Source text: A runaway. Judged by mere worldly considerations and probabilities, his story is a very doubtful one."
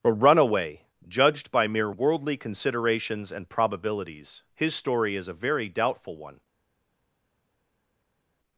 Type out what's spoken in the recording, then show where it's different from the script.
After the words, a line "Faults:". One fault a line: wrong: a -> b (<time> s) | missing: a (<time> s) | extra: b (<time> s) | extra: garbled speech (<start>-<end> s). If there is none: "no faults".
A runaway. Judged by mere worldly considerations and probabilities, his story is a very doubtful one."
Faults:
no faults